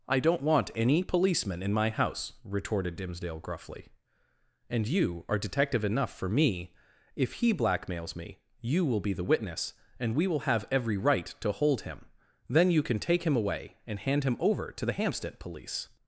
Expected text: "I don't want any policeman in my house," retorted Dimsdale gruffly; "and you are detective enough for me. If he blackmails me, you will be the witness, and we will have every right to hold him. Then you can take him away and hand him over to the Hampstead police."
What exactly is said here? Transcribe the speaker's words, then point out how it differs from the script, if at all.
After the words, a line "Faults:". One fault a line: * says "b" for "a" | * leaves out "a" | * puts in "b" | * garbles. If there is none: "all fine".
"I don't want any policeman in my house," retorted Dimsdale gruffly; "and you are detective enough for me. If he blackmails me, you will be the witness, and we will have every right to hold him. Then you can take him away and hand him over to the Hampstead police."
Faults:
all fine